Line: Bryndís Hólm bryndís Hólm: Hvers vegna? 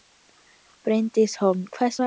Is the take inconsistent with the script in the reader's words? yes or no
yes